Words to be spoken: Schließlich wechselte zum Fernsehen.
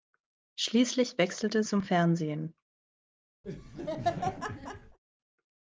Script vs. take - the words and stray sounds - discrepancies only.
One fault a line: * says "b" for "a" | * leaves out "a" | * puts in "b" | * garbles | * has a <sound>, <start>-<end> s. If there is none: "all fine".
* has a laugh, 3.4-5.0 s